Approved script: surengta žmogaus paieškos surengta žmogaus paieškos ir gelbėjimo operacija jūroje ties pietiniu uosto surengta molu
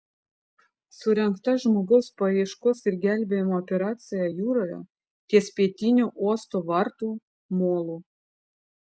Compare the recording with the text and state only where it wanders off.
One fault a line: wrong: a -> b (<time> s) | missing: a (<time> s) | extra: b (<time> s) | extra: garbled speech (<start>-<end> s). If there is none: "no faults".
missing: surengta žmogaus paieškos (2.8 s)
wrong: surengta -> vartų (6.7 s)